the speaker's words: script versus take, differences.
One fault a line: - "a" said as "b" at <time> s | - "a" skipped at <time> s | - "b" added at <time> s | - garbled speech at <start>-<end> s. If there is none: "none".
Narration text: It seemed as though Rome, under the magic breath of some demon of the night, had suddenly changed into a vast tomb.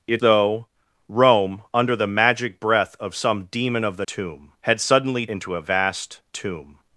- "seemed as" skipped at 0.2 s
- "night" said as "tomb" at 4.1 s
- "changed" skipped at 5.3 s